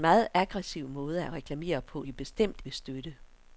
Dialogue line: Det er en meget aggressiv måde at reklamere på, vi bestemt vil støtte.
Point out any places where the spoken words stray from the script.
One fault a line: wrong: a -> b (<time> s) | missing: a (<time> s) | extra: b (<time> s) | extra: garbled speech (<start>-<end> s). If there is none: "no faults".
no faults